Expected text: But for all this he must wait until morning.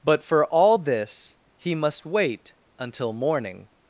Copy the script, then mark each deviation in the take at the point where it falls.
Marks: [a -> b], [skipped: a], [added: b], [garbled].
But for all this he must wait until morning.